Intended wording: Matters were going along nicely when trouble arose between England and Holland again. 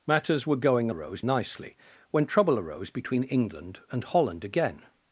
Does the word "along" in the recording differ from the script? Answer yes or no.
yes